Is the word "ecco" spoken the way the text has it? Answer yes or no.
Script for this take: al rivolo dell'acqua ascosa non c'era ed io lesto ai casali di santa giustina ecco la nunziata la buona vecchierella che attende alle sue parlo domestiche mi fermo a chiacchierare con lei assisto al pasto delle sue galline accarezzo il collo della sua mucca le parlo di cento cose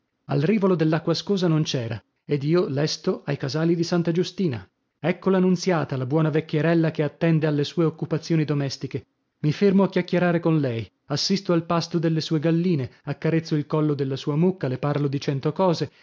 yes